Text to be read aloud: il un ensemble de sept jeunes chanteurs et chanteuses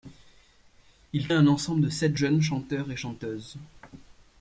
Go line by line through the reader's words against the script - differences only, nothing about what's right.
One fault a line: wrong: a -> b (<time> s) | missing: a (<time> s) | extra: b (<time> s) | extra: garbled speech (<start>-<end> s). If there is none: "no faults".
no faults